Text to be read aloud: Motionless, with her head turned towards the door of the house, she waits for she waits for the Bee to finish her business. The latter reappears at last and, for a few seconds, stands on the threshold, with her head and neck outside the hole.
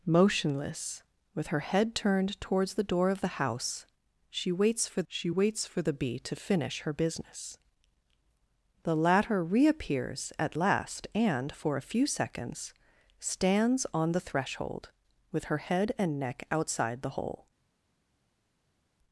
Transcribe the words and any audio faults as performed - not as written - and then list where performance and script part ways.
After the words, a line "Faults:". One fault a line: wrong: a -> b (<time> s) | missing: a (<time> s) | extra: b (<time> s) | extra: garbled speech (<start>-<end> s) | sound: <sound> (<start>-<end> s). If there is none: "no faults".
Motionless, with her head turned towards the door of the house, she waits for she waits for the Bee to finish her business. The latter reappears at last and, for a few seconds, stands on the threshold, with her head and neck outside the hole.
Faults:
no faults